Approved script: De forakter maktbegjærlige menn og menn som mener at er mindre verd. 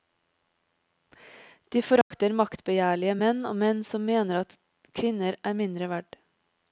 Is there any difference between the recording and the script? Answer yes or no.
yes